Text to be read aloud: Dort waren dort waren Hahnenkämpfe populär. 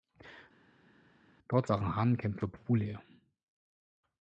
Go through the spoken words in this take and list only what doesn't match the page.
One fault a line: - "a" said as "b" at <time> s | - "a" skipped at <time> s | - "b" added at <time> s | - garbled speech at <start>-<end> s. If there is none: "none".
- "dort waren" skipped at 1.9 s